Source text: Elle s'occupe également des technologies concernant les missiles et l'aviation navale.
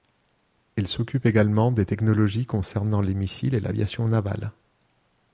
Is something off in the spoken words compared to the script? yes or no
no